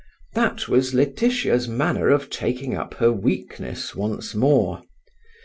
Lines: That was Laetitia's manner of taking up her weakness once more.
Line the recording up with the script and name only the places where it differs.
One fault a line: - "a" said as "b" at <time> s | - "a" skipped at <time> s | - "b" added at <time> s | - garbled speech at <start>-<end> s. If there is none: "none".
none